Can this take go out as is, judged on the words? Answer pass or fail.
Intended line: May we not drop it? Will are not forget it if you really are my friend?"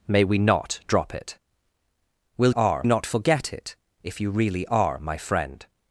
pass